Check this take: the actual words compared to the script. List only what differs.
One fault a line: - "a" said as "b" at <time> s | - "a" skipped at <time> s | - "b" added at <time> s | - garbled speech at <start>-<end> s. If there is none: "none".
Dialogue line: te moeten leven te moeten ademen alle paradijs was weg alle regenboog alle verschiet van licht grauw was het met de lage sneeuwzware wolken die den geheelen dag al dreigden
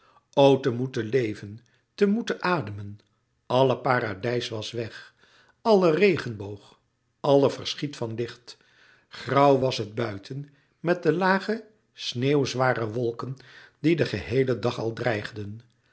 - "buiten" added at 9.9 s